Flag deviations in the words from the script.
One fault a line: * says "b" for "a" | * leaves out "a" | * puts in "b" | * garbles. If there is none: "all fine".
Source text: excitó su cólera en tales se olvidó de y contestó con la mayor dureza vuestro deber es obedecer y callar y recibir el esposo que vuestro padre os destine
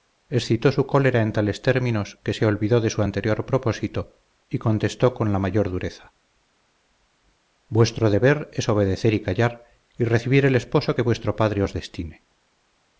* puts in "términos que"
* puts in "su anterior propósito"